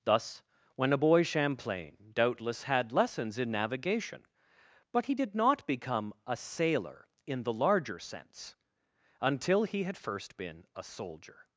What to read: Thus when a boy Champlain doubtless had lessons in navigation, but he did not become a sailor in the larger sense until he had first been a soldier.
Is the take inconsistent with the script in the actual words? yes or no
no